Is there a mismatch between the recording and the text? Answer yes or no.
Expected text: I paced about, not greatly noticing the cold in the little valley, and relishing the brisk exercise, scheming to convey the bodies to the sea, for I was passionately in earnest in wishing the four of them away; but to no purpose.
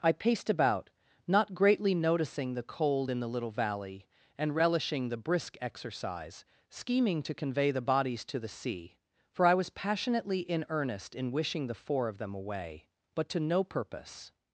no